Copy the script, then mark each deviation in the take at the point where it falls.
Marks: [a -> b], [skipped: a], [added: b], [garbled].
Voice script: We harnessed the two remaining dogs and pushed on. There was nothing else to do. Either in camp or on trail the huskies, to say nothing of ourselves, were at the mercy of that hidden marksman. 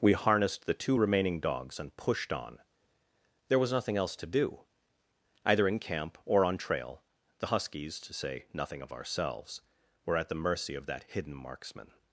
We harnessed the two remaining dogs and pushed on. There was nothing else to do. Either in camp or on trail the huskies, to say nothing of ourselves, were at the mercy of that hidden marksman.